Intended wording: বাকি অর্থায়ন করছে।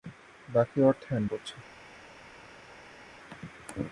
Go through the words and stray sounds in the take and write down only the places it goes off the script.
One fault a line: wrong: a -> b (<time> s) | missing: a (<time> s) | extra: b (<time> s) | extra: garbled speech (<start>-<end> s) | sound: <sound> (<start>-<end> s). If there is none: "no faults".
no faults